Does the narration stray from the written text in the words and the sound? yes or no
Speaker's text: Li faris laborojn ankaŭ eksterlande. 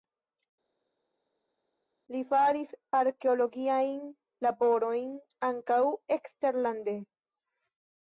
yes